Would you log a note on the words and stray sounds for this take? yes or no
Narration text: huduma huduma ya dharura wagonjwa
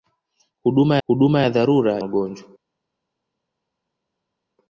no